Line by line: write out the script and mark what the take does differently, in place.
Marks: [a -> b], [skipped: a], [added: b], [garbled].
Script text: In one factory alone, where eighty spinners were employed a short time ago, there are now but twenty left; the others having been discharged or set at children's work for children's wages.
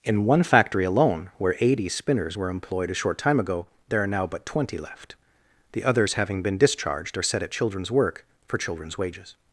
In one factory alone, where eighty spinners were employed a short time ago, there are now but twenty left; the others having been discharged or set at children's work for children's wages.